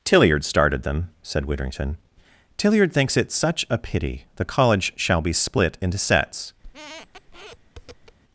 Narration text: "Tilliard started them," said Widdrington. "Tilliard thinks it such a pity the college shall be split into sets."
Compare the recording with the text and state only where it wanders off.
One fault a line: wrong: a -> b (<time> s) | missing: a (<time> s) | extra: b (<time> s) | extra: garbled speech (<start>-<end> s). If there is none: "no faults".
no faults